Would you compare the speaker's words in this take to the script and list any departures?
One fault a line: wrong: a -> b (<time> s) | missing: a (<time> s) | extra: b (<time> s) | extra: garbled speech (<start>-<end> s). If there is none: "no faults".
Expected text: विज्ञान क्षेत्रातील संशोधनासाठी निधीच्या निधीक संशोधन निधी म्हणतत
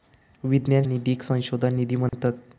missing: क्षेत्रातील संशोधनासाठी निधीच्या (0.8 s)